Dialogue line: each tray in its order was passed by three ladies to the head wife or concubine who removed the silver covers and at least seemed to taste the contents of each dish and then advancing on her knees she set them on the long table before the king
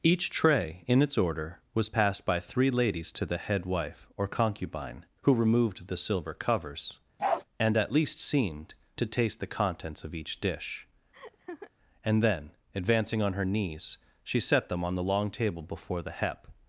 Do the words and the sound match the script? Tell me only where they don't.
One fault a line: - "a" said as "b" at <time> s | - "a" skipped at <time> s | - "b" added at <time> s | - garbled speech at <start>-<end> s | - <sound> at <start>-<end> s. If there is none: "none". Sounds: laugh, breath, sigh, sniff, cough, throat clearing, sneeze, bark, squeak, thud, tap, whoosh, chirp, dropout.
- bark at 7.2-7.4 s
- laugh at 11.1-11.7 s
- "king" said as "hep" at 16.1 s